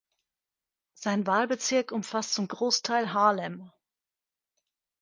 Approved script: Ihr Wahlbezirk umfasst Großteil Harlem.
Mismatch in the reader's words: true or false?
true